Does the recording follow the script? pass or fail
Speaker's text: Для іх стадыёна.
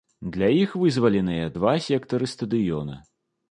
fail